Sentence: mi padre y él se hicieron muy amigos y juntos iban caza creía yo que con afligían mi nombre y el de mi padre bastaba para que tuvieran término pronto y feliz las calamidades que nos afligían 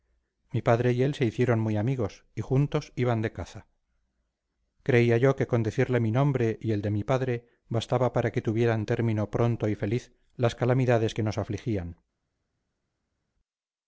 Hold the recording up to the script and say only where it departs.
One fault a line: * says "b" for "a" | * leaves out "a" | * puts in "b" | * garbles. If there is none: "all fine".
* puts in "de"
* says "decirle" for "afligían"